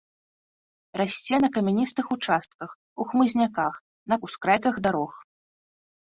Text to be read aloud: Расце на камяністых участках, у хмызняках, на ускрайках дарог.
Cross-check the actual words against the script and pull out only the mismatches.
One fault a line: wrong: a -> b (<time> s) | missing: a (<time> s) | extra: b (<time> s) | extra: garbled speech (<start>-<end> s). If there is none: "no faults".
no faults